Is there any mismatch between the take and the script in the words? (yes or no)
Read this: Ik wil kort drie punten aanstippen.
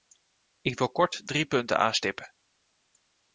no